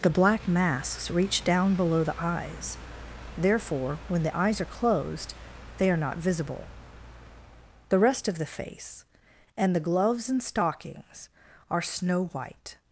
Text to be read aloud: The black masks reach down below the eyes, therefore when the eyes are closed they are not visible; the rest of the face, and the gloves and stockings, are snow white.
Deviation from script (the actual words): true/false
false